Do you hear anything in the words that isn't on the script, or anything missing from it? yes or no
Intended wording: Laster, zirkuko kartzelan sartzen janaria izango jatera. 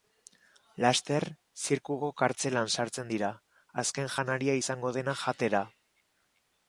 yes